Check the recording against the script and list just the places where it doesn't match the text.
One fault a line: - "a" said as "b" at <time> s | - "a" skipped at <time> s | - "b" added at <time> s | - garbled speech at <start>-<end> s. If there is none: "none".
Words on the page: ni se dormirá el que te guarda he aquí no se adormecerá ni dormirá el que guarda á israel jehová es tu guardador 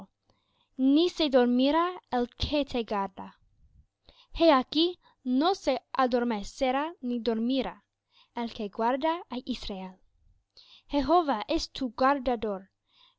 none